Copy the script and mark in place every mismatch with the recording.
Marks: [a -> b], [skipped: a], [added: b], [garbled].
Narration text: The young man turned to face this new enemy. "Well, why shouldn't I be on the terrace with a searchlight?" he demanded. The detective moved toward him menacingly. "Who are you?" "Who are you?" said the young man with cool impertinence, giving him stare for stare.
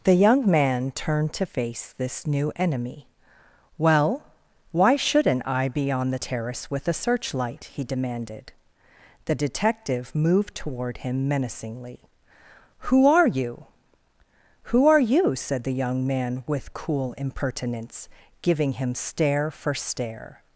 The young man turned to face this new enemy. "Well, why shouldn't I be on the terrace with a searchlight?" he demanded. The detective moved toward him menacingly. "Who are you?" "Who are you?" said the young man with cool impertinence, giving him stare for stare.